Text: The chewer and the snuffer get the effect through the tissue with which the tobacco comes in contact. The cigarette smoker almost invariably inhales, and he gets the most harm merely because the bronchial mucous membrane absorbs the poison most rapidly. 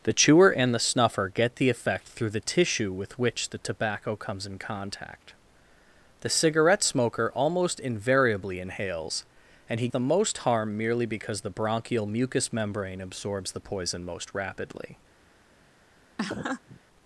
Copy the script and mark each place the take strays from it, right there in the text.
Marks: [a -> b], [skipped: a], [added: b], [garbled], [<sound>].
The chewer and the snuffer get the effect through the tissue with which the tobacco comes in contact. The cigarette smoker almost invariably inhales, and he [skipped: gets] the most harm merely because the bronchial mucous membrane absorbs the poison most rapidly. [laugh]